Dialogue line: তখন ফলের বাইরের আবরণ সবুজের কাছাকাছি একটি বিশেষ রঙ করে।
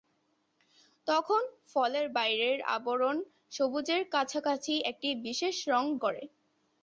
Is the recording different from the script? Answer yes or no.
no